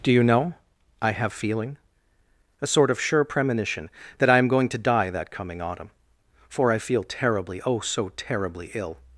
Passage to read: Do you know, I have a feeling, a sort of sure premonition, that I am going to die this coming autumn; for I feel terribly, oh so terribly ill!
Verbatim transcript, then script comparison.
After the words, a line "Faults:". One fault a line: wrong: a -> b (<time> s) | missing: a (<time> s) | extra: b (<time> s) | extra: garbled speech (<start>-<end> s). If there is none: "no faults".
Do you know, I have feeling, a sort of sure premonition, that I am going to die that coming autumn; for I feel terribly, oh so terribly ill!
Faults:
missing: a (1.3 s)
wrong: this -> that (5.1 s)